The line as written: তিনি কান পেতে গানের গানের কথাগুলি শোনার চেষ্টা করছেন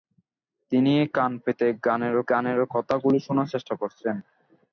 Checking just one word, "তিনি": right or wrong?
right